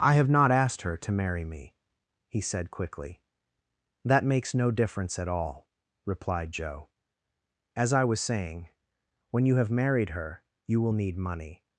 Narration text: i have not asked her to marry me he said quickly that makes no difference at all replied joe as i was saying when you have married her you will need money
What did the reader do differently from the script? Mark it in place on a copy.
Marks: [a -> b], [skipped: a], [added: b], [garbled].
i have not asked her to marry me he said quickly that makes no difference at all replied joe as i was saying when you have married her you will need money